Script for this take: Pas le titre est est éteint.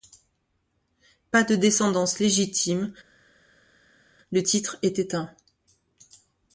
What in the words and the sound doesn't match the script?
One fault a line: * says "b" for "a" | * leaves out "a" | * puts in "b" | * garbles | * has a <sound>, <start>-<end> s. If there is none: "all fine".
* puts in "de descendance légitime"
* leaves out "est"